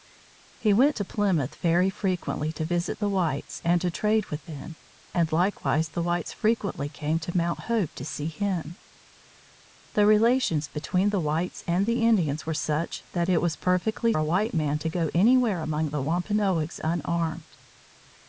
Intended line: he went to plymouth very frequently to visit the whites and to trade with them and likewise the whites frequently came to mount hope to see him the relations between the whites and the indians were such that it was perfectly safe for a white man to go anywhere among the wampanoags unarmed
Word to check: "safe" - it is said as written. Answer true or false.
false